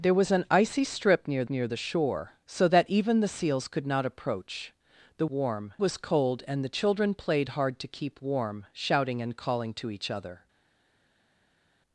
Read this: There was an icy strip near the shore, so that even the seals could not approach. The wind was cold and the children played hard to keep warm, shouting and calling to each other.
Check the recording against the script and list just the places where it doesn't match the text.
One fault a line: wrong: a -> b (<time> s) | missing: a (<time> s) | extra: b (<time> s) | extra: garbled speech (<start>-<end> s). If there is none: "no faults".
extra: near (1.5 s)
wrong: wind -> warm (5.3 s)